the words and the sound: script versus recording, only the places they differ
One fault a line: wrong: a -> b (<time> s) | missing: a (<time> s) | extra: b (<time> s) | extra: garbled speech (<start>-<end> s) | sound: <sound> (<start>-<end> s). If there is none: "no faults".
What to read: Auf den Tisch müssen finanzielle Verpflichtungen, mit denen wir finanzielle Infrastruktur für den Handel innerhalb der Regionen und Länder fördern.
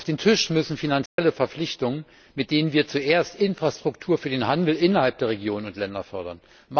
sound: dropout (1.1-1.2 s)
wrong: finanzielle -> zuerst (2.9 s)